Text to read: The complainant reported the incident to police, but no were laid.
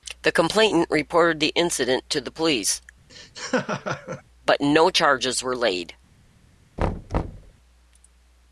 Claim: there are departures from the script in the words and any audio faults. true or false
true